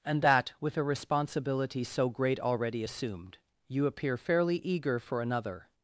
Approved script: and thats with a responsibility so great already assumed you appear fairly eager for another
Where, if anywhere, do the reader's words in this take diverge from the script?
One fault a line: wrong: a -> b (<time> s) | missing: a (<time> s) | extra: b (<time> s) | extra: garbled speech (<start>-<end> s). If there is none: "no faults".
wrong: thats -> that (0.2 s)